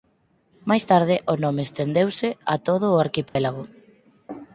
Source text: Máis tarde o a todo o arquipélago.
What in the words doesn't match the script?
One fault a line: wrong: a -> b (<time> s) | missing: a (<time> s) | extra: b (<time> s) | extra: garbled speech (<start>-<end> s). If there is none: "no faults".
extra: nome estendeuse (1.4 s)